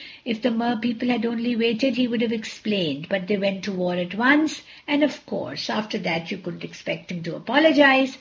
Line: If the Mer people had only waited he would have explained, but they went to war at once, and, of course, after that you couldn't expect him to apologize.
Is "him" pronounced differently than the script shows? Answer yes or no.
no